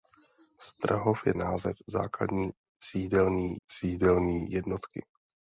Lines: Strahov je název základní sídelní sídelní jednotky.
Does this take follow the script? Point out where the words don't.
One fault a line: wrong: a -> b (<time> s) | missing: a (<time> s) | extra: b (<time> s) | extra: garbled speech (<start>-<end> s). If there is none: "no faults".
no faults